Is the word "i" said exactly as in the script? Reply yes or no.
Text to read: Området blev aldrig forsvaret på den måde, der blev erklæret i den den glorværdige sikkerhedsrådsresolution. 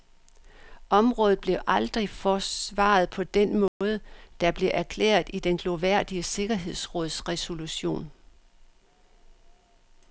yes